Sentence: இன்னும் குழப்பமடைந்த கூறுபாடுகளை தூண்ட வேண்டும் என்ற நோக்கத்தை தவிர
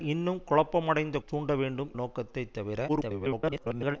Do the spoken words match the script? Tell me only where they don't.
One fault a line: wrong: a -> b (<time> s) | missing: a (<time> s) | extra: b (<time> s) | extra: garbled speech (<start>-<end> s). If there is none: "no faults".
missing: கூறுபாடுகளை (1.2 s)
missing: என்ற (1.9 s)
extra: garbled speech (2.9-4.0 s)